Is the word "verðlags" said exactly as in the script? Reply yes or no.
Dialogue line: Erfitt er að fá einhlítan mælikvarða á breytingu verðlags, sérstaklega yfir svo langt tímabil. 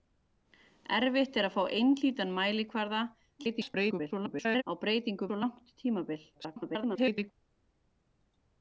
no